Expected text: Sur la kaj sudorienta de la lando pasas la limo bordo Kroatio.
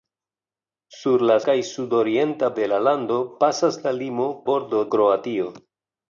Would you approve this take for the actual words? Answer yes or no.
yes